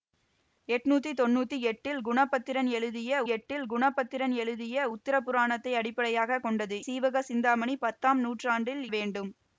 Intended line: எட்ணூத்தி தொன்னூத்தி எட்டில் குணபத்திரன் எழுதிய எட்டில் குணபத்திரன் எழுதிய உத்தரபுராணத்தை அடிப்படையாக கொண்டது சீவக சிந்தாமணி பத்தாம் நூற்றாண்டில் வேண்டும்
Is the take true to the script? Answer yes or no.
yes